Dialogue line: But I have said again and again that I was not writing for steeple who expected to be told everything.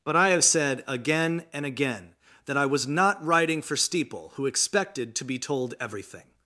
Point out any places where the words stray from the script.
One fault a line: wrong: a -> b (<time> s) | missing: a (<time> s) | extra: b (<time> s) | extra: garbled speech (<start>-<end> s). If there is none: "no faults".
no faults